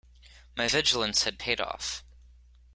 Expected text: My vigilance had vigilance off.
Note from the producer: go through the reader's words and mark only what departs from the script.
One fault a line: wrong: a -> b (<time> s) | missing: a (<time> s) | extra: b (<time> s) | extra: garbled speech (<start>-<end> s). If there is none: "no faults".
wrong: vigilance -> paid (1.4 s)